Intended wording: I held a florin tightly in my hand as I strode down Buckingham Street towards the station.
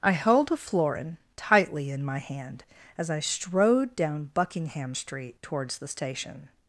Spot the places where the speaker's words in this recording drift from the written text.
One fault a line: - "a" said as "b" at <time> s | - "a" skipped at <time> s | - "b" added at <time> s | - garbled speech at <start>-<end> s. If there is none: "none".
none